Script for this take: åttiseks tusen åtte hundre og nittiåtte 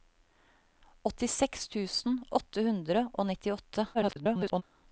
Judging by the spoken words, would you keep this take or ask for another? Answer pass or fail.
fail